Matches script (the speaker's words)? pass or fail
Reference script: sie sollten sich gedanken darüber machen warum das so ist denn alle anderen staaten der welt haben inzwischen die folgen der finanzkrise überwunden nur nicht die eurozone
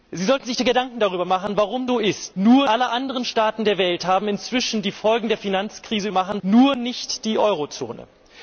fail